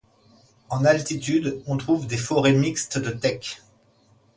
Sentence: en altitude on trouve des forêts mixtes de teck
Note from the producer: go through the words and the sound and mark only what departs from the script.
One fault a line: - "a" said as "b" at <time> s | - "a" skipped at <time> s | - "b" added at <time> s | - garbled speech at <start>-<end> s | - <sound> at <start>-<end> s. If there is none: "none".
none